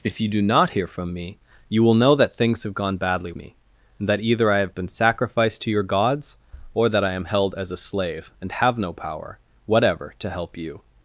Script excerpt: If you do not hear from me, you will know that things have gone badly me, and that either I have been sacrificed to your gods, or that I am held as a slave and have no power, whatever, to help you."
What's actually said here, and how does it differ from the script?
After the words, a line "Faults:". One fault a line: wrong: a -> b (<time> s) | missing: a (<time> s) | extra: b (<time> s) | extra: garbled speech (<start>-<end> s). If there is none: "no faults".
If you do not hear from me, you will know that things have gone badly me, and that either I have been sacrificed to your gods, or that I am held as a slave and have no power, whatever, to help you."
Faults:
no faults